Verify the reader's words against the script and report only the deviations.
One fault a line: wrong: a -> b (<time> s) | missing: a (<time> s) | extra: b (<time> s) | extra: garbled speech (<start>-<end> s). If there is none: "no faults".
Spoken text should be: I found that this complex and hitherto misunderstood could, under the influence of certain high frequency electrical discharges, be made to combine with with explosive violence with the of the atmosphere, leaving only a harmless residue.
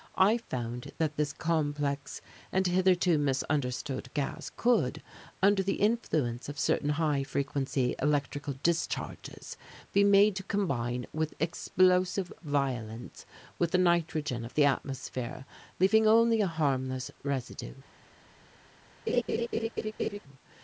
extra: gas (4.2 s)
missing: with (11.3 s)
extra: nitrogen (13.8 s)